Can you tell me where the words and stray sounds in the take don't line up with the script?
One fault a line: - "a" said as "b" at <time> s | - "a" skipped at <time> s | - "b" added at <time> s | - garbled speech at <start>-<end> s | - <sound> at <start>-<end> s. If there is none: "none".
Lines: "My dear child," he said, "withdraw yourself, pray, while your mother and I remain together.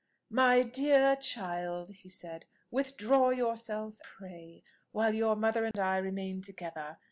- dropout at 5.7-5.7 s